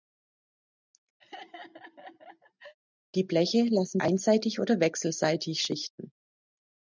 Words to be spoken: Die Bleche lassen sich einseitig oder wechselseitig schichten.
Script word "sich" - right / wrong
wrong